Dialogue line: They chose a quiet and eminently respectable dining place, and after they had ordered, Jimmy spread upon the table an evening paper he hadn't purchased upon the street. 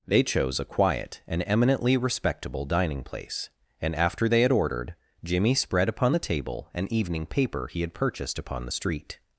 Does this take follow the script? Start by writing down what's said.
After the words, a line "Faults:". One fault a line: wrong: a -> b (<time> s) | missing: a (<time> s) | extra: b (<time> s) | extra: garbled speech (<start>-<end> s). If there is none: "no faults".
They chose a quiet and eminently respectable dining place, and after they had ordered, Jimmy spread upon the table an evening paper he had purchased upon the street.
Faults:
wrong: hadn't -> had (7.8 s)